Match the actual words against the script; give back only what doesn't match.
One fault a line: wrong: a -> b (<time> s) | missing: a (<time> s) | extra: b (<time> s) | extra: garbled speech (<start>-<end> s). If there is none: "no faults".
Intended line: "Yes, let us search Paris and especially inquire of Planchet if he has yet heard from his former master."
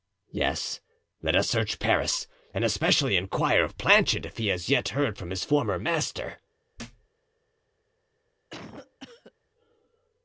no faults